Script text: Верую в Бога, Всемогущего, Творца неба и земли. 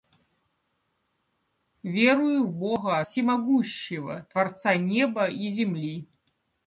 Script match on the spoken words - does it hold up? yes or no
yes